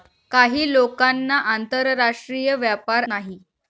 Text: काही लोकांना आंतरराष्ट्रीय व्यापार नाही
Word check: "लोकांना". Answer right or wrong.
right